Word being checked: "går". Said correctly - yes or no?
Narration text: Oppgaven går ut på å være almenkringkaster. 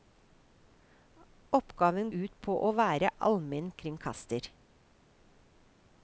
no